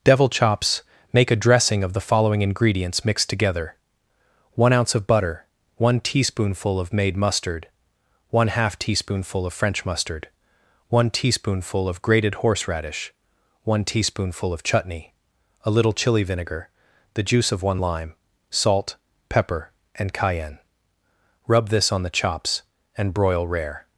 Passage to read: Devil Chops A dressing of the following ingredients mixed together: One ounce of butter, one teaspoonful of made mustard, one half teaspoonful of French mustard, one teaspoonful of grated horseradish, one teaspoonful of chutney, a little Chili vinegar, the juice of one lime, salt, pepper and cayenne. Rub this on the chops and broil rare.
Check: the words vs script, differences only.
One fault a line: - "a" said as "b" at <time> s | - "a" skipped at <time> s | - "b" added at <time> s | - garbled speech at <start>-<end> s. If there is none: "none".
- "Make" added at 1.1 s